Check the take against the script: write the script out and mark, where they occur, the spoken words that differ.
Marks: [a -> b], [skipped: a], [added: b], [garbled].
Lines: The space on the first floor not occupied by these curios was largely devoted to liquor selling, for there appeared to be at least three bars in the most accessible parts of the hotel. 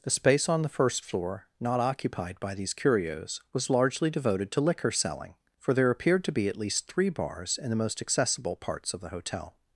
The space on the first floor not occupied by these curios was largely devoted to liquor selling, for there appeared to be at least three bars in the most accessible parts of the hotel.